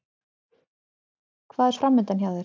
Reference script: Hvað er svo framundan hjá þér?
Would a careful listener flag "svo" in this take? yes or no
yes